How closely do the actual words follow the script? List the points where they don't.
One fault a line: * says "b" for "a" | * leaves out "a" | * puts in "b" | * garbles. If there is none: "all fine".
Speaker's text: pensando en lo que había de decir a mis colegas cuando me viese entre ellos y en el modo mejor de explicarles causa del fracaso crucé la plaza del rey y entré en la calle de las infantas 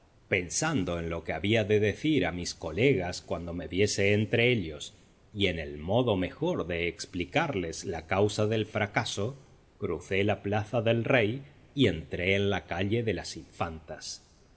* puts in "la"